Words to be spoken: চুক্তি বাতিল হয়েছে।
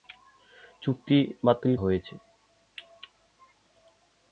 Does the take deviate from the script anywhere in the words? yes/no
no